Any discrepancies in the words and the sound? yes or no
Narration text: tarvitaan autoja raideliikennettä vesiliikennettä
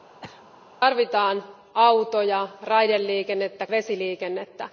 yes